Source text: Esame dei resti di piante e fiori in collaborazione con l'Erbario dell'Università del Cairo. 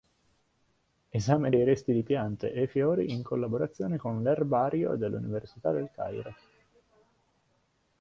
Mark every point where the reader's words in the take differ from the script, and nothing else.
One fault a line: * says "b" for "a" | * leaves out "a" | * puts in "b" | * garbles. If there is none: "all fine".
all fine